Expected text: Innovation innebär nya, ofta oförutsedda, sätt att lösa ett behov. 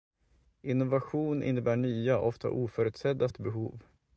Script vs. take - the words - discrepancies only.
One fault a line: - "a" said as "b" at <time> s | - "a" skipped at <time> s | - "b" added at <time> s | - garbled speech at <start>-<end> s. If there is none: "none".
- "sätt att lösa" skipped at 3.3 s